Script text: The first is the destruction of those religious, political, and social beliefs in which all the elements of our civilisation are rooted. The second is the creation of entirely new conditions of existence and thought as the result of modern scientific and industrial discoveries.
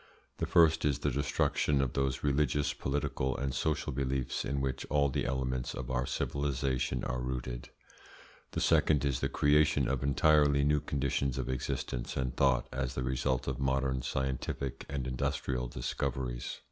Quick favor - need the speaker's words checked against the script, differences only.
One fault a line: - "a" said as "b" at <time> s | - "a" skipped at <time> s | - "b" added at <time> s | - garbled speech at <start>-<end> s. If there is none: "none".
none